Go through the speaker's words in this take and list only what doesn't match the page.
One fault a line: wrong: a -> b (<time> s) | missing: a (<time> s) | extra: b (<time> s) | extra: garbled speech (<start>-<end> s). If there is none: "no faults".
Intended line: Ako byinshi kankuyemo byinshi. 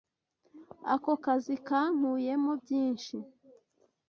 wrong: byinshi -> kazi (1.2 s)